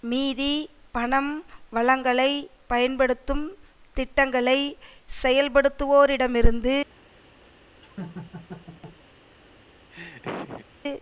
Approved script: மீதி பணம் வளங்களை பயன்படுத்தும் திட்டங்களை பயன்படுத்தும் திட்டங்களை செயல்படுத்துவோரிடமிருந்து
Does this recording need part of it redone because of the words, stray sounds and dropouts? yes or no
yes